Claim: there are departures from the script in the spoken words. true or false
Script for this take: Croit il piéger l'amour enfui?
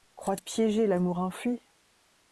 true